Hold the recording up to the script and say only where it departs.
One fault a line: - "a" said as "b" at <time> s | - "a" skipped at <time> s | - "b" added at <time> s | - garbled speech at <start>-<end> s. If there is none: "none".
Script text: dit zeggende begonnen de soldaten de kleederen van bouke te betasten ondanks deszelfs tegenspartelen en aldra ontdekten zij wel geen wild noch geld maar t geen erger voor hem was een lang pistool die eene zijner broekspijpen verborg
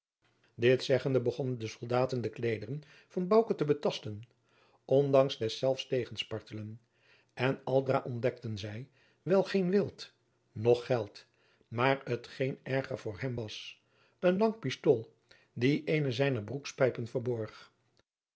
none